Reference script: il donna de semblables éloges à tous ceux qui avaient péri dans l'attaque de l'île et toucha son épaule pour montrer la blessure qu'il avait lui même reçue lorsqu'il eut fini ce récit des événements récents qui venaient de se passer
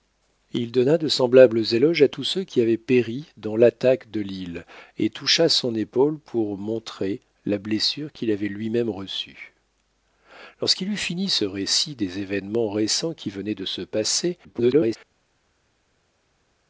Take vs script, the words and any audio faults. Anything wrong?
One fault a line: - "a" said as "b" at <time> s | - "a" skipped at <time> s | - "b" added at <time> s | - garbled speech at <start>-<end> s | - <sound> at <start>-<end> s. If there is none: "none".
- garbled speech at 14.4-15.0 s